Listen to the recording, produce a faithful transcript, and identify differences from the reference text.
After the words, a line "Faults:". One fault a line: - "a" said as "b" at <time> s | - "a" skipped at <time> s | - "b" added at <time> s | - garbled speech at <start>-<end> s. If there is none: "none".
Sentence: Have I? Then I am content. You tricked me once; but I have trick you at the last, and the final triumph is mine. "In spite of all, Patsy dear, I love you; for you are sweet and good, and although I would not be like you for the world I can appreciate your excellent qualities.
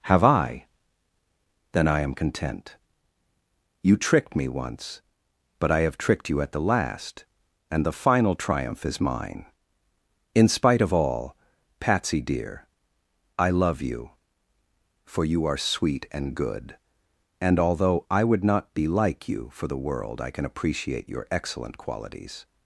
Have I? Then I am content. You tricked me once; but I have tricked you at the last, and the final triumph is mine. "In spite of all, Patsy dear, I love you; for you are sweet and good, and although I would not be like you for the world I can appreciate your excellent qualities.
Faults:
- "trick" said as "tricked" at 6.0 s